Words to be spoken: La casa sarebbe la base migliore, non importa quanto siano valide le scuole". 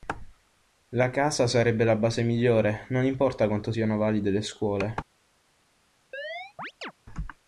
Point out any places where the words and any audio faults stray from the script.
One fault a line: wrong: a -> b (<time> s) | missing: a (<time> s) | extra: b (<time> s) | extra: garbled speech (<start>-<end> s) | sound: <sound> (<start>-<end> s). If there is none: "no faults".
sound: chirp (6.1-6.9 s)